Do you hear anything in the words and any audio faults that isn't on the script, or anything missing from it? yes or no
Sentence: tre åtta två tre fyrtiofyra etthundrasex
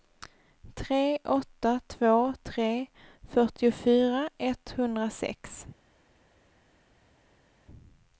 no